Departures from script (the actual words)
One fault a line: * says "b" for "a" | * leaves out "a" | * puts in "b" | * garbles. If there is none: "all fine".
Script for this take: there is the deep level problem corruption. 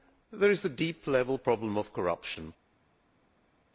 * puts in "of"